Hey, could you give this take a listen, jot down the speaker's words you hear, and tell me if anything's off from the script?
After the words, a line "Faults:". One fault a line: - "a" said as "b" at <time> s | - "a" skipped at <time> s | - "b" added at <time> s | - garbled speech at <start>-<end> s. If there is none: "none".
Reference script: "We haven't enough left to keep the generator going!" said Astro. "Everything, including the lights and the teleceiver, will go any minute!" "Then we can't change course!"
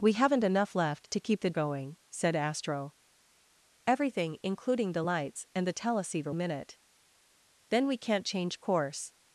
"We haven't enough left to keep the going!" said Astro. "Everything, including the lights and the teleceiver, minute!" "Then we can't change course!"
Faults:
- "generator" skipped at 1.5 s
- "will go any" skipped at 6.3 s